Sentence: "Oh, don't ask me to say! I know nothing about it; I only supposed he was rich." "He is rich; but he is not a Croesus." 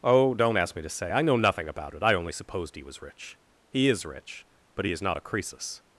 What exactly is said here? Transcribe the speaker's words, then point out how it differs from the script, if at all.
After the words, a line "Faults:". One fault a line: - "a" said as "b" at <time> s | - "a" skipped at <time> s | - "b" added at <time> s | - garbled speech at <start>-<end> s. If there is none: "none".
"Oh, don't ask me to say! I know nothing about it; I only supposed he was rich." "He is rich; but he is not a Croesus."
Faults:
none